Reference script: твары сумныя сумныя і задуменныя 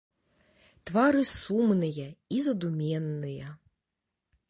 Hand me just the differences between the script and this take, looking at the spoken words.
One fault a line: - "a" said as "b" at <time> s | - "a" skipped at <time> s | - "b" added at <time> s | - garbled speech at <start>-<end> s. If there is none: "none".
- "сумныя" skipped at 2.1 s